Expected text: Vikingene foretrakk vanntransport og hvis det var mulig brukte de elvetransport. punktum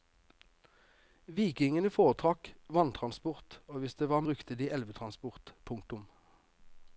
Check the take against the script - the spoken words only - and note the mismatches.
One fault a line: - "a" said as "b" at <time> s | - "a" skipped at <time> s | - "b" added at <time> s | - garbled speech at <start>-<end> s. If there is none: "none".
- "mulig" skipped at 4.2 s